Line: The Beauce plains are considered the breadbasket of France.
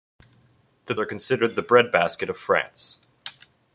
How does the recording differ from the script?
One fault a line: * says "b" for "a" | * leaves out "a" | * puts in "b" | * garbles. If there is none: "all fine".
* leaves out "Beauce plains"